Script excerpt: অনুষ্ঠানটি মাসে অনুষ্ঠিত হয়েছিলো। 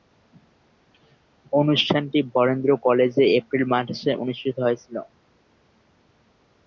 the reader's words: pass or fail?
fail